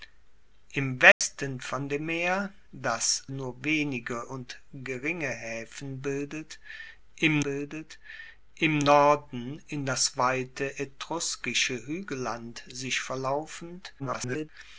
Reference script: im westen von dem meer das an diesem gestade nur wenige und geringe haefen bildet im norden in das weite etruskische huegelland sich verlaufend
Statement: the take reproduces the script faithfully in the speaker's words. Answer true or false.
false